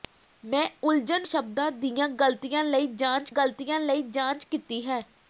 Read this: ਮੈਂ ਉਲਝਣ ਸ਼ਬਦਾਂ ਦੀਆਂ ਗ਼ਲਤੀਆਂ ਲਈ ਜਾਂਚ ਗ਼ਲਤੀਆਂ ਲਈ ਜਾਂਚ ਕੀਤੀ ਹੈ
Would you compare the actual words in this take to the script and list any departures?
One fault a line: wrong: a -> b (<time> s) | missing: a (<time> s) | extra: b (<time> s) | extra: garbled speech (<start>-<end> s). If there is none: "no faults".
no faults